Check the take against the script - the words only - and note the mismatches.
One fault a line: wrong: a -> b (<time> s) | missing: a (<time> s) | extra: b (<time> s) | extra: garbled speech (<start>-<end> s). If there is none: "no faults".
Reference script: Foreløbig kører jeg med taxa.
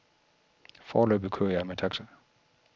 no faults